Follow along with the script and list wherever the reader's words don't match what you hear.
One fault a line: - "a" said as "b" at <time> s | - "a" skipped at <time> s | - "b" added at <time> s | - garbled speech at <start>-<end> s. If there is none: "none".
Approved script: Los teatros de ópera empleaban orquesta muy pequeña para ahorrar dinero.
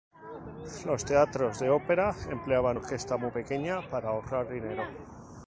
none